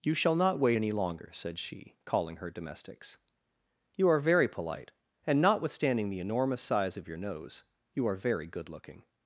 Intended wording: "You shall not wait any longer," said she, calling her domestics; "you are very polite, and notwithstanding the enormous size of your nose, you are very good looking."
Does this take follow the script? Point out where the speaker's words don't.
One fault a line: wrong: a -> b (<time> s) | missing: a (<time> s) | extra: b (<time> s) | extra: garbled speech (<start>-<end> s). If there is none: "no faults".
no faults